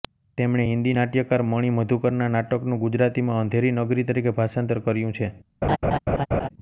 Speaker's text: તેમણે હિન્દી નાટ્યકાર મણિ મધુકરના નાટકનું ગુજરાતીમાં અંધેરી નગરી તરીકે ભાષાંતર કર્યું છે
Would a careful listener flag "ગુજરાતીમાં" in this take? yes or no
no